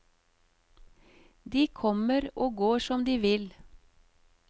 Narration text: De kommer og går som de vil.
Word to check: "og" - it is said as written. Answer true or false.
true